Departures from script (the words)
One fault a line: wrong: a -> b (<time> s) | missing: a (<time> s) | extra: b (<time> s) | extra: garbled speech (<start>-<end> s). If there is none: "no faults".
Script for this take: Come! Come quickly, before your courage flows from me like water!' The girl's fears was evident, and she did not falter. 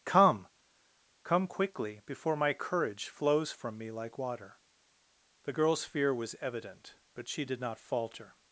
wrong: your -> my (2.4 s)
wrong: fears -> fear (5.8 s)
wrong: and -> but (7.1 s)